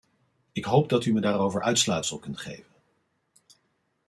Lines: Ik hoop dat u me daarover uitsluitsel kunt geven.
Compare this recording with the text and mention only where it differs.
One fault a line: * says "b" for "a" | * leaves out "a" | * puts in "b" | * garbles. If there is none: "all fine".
all fine